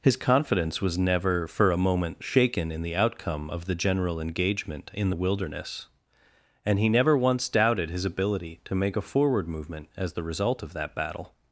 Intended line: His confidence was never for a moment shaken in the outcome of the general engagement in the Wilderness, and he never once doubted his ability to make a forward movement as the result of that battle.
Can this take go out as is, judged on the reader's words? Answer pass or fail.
pass